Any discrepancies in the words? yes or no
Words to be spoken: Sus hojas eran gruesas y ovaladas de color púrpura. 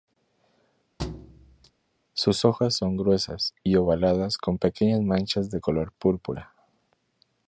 yes